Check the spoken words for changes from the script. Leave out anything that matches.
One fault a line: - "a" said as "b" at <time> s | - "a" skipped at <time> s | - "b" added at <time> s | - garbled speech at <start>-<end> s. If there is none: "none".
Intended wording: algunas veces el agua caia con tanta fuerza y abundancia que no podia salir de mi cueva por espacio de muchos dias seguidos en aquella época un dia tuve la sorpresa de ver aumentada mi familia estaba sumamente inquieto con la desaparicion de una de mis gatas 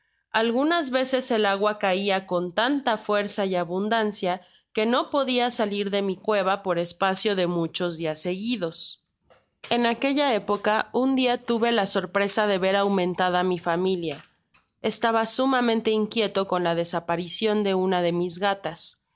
none